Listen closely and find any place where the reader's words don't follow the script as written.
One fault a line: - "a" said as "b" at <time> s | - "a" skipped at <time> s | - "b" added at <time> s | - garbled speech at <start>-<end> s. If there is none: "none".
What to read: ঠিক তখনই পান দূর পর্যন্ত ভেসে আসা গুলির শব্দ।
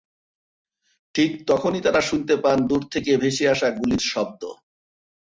- "তারা শুনতে" added at 1.8 s
- "পর্যন্ত" said as "থেকে" at 2.9 s